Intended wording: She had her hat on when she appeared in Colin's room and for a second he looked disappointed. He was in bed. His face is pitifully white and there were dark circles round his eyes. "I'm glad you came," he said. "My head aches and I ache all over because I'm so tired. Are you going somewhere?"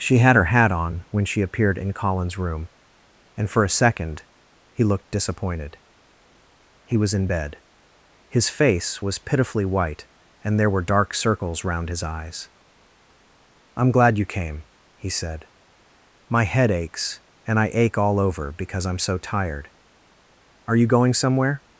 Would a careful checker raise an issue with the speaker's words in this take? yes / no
yes